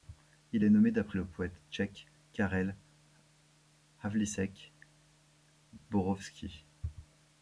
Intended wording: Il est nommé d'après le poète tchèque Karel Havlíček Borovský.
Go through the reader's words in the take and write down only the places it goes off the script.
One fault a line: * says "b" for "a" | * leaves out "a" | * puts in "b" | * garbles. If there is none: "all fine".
all fine